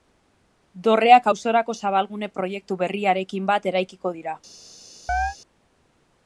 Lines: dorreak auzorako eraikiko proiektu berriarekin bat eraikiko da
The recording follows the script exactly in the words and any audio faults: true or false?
false